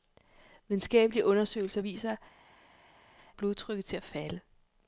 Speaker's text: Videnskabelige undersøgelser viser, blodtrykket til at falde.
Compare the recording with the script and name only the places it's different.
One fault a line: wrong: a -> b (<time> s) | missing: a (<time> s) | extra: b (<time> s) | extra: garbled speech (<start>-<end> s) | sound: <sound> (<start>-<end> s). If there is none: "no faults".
no faults